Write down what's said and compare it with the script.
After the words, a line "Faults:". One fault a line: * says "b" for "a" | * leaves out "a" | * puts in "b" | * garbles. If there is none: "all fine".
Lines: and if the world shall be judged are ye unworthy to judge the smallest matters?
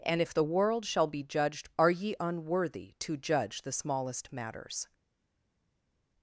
and if the world shall be judged are ye unworthy to judge the smallest matters?
Faults:
all fine